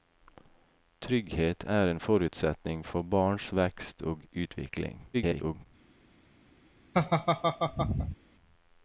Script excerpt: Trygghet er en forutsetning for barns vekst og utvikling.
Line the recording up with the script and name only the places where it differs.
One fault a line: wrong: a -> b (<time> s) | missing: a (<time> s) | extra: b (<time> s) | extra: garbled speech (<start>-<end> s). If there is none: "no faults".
extra: garbled speech (5.1-5.7 s)